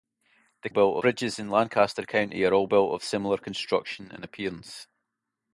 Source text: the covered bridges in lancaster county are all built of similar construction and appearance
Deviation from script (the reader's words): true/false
true